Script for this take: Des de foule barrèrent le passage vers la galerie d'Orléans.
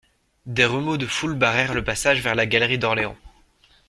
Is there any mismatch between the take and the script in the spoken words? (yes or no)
yes